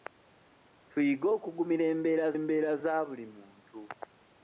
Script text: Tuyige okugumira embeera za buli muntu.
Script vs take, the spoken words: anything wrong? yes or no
yes